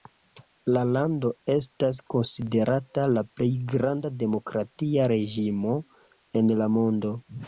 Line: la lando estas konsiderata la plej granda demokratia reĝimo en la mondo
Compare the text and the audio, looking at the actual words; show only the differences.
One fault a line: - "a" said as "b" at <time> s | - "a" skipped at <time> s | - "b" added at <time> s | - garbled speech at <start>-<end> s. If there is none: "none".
none